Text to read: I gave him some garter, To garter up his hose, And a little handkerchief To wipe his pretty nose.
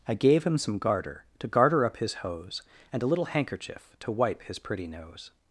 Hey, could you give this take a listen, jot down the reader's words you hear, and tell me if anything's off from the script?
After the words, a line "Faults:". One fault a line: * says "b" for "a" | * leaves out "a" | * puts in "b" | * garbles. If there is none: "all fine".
I gave him some garter, To garter up his hose, And a little handkerchief To wipe his pretty nose.
Faults:
all fine